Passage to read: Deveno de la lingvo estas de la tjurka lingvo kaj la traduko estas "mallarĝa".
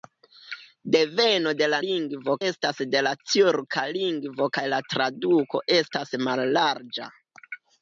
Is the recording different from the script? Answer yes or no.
no